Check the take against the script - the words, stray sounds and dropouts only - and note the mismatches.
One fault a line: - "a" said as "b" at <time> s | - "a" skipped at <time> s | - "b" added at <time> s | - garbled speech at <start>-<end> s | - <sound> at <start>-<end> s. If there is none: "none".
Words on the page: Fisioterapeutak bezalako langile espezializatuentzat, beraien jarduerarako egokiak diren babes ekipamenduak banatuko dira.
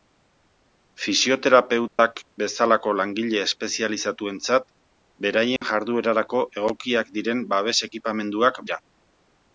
- dropout at 1.9-2.0 s
- dropout at 5.6-5.6 s
- "banatuko" skipped at 8.7 s